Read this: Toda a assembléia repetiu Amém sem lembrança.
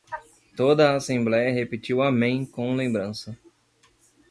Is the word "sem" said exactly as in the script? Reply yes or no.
no